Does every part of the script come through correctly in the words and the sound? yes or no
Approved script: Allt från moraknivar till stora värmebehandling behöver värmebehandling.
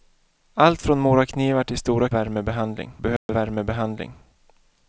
no